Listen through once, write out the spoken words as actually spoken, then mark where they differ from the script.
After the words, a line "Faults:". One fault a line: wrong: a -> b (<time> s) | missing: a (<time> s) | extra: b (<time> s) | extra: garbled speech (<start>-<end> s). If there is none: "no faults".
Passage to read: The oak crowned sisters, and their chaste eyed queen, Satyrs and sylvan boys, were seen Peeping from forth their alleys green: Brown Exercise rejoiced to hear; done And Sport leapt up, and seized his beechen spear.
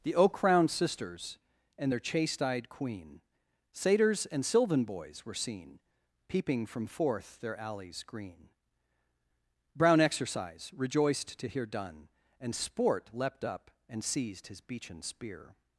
The oak crowned sisters, and their chaste eyed queen, Satyrs and sylvan boys, were seen Peeping from forth their alleys green: Brown Exercise rejoiced to hear; done And Sport leapt up, and seized his beechen spear.
Faults:
no faults